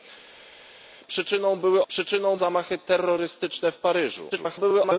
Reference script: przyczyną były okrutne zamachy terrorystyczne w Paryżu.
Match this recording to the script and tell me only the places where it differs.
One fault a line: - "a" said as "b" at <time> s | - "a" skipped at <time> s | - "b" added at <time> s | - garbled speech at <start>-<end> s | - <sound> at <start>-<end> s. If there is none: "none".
- "okrutne" said as "przyczyną" at 1.9 s
- garbled speech at 4.3-5.0 s